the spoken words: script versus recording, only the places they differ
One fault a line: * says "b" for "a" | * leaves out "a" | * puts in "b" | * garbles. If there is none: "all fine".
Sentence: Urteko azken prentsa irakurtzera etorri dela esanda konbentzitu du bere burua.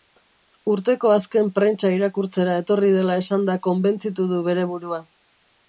all fine